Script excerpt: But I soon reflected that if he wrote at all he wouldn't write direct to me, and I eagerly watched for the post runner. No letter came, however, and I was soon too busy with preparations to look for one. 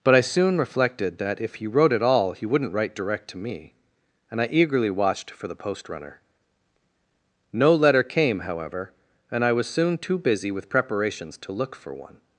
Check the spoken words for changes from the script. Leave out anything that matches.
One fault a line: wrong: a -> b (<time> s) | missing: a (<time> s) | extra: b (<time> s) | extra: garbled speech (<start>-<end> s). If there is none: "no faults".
no faults